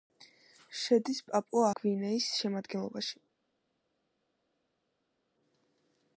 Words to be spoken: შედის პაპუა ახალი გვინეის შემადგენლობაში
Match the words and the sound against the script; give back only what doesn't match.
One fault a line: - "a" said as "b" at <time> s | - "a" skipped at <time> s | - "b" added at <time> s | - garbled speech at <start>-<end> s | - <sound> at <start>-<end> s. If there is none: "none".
- "ახალი" skipped at 1.7 s